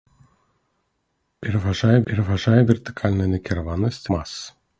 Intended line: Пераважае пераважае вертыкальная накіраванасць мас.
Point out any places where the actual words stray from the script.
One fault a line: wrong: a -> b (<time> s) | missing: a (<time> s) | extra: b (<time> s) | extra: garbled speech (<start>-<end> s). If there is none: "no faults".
no faults